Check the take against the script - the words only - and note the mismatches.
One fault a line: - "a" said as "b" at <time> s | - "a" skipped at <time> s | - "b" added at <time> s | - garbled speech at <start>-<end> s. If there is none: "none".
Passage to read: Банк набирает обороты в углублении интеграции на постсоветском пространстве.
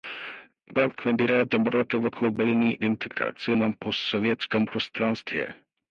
none